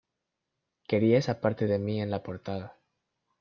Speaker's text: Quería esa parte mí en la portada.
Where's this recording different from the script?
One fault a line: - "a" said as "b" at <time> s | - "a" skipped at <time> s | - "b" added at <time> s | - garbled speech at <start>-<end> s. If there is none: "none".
- "de" added at 1.6 s